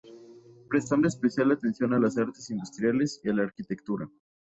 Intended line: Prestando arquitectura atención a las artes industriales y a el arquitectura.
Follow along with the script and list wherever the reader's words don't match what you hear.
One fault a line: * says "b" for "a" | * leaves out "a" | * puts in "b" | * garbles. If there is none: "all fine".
* says "especial" for "arquitectura"
* says "la" for "el"